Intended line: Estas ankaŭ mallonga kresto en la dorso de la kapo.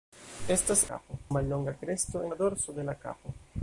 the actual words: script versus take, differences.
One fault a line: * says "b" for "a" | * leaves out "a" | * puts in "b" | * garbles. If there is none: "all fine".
* says "kapo" for "ankaŭ"
* leaves out "en"